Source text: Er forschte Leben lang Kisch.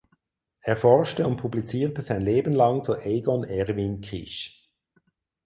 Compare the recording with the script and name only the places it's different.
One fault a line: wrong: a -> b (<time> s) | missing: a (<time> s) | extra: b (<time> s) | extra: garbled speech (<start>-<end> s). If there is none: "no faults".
extra: und publizierte sein (1.3 s)
extra: zu Egon Erwin (2.8 s)